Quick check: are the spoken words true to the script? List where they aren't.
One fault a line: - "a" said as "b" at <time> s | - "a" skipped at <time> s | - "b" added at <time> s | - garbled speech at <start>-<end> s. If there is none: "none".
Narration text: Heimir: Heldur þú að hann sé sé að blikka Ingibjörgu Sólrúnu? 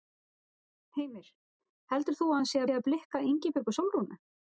none